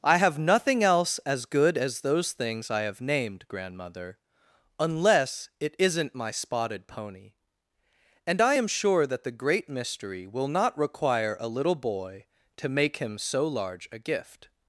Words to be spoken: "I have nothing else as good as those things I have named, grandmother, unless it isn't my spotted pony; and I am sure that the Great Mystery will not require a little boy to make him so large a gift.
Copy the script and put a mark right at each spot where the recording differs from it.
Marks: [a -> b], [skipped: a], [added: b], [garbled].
"I have nothing else as good as those things I have named, grandmother, unless it isn't my spotted pony; and I am sure that the Great Mystery will not require a little boy to make him so large a gift.